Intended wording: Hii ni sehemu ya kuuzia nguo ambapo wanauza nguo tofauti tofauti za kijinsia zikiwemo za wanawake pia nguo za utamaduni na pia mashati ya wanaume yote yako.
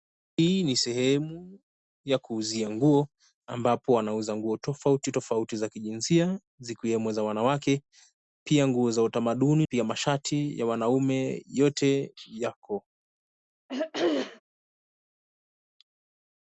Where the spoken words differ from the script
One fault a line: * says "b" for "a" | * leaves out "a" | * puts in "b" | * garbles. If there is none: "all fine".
* leaves out "na"